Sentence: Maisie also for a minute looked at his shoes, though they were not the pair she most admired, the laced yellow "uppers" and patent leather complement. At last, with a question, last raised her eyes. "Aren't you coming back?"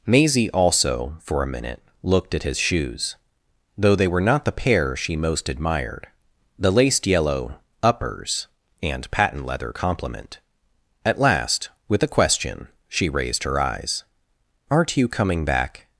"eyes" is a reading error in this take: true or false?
false